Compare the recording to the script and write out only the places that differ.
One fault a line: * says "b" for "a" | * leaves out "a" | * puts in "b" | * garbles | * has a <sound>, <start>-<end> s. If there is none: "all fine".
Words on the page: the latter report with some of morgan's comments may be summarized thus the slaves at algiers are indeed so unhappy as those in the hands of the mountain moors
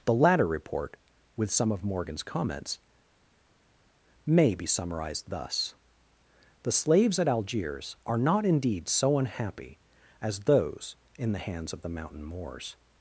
* puts in "not"